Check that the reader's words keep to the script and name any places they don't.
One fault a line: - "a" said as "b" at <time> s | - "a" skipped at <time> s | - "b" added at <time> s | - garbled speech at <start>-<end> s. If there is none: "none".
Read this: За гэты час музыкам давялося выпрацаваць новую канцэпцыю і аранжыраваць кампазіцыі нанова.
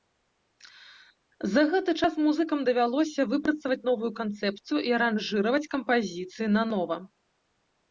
none